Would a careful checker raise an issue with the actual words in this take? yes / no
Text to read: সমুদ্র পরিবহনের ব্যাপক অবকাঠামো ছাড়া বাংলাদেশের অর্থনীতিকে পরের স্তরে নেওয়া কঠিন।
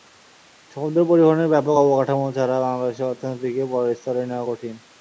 no